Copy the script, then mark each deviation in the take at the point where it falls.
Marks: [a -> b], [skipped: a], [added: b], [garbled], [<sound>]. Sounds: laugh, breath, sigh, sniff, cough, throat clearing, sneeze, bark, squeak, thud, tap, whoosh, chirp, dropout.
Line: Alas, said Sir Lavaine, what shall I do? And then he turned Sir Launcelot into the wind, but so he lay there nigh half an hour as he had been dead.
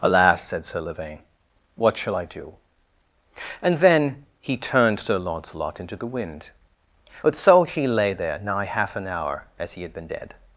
Alas, said Sir Lavaine, what shall I do? And then he turned Sir Launcelot into the wind, but so he lay there nigh half an hour as he had been dead.